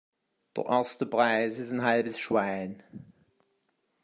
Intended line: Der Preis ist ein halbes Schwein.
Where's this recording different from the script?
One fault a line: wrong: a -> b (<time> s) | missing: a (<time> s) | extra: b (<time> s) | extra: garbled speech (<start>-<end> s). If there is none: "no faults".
extra: erste (0.7 s)